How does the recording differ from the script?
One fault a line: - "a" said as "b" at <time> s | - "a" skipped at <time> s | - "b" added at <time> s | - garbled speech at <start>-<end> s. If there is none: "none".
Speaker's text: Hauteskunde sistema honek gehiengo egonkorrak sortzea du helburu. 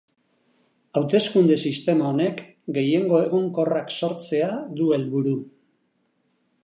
none